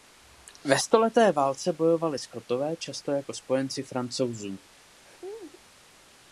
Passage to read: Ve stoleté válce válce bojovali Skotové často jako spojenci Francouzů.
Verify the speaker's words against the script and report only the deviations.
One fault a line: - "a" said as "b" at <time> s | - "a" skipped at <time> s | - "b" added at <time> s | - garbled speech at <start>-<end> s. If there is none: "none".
- "válce" skipped at 1.7 s